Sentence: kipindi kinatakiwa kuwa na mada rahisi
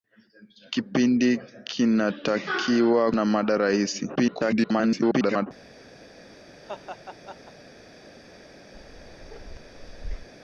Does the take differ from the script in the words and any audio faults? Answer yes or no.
yes